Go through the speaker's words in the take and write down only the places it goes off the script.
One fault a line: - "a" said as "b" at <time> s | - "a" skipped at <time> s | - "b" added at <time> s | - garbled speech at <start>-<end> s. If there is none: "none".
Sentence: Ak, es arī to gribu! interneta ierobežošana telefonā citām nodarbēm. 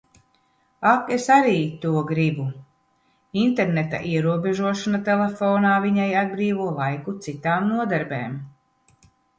- "viņai atbrīvo laiku" added at 5.9 s